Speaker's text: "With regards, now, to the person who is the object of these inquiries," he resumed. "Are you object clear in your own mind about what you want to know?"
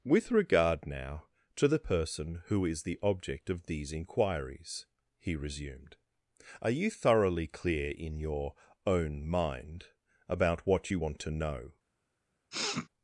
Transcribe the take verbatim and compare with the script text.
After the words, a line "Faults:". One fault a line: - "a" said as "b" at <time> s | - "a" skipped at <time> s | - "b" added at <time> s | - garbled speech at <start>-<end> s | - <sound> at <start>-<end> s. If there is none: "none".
"With regard, now, to the person who is the object of these inquiries," he resumed. "Are you thoroughly clear in your own mind about what you want to know?"
Faults:
- "regards" said as "regard" at 0.3 s
- "object" said as "thoroughly" at 6.9 s
- sniff at 12.5-12.9 s